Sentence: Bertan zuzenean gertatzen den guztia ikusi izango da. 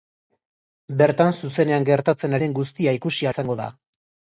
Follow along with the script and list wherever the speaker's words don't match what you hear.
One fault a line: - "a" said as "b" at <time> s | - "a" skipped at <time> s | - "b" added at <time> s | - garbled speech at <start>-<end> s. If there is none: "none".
none